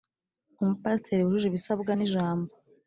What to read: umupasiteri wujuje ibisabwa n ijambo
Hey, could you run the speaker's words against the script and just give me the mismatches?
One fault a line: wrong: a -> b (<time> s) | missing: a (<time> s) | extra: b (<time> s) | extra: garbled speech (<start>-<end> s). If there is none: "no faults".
no faults